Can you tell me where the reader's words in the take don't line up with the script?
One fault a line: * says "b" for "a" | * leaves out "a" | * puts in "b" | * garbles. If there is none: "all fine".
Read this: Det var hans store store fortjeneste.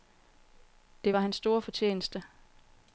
* leaves out "store"